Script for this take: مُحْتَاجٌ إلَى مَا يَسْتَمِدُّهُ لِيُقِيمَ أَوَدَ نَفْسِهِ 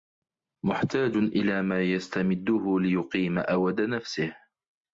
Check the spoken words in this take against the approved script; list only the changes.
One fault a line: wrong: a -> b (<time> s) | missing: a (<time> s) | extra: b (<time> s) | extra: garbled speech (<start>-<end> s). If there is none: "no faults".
no faults